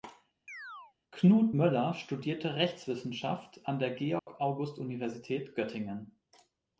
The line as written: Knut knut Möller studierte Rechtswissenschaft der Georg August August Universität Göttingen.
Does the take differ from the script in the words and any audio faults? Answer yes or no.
yes